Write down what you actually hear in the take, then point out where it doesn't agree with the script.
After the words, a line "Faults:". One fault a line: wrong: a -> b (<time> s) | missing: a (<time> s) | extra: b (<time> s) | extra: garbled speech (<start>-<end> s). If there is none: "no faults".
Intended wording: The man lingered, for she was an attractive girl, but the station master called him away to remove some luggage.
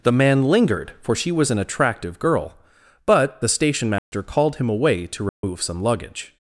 The man lingered, for she was an attractive girl, but the station master called him away to remove some luggage.
Faults:
no faults